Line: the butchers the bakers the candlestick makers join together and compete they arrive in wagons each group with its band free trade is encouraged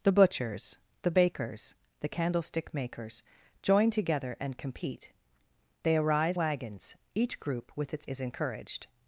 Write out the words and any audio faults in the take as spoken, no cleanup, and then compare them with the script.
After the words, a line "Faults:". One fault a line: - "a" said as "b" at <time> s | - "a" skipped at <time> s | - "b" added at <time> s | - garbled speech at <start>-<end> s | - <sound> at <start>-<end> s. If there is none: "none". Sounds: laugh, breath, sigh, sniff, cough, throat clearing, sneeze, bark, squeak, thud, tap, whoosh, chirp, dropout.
the butchers the bakers the candlestick makers join together and compete they arrive wagons each group with its is encouraged
Faults:
- "in" skipped at 6.4 s
- "band free trade" skipped at 8.0 s